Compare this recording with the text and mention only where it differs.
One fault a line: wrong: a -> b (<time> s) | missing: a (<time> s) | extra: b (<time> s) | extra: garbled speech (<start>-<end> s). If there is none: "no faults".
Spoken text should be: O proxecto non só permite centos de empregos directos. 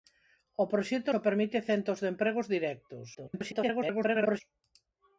missing: non (1.1 s)
extra: garbled speech (3.1-4.4 s)